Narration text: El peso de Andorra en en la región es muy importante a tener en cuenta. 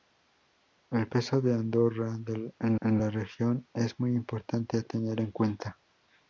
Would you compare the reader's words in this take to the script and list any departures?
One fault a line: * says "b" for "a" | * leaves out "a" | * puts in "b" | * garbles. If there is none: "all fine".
all fine